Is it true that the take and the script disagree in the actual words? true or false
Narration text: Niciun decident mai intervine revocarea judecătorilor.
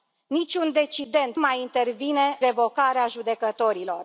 false